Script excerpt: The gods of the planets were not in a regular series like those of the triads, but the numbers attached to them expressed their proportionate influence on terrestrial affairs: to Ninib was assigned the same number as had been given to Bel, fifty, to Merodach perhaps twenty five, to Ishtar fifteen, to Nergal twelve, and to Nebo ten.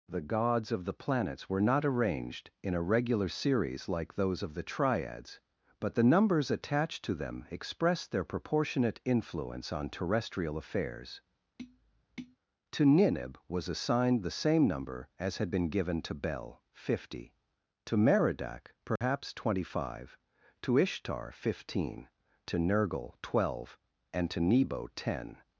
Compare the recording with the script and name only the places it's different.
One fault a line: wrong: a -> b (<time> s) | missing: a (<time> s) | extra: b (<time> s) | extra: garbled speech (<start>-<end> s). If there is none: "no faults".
extra: arranged (1.9 s)